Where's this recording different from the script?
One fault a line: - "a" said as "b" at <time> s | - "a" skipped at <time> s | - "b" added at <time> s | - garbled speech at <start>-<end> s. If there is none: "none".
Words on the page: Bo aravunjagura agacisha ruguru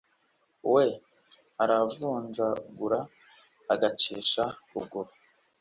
- "Bo" said as "We" at 0.7 s